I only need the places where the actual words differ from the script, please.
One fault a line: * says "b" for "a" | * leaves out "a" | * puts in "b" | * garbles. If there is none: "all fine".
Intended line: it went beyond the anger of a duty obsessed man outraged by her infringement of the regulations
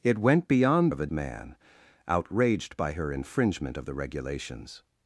* leaves out "the anger"
* leaves out "duty obsessed"